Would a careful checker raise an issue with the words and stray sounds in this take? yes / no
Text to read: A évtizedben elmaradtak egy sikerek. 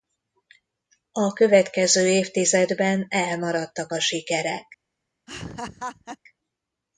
yes